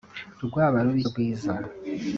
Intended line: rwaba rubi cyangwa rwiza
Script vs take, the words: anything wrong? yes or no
yes